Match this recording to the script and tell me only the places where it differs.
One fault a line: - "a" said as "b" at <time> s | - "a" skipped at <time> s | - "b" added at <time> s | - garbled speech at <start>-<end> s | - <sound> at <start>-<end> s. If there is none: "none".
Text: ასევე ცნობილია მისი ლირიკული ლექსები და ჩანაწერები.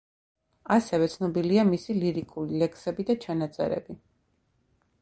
none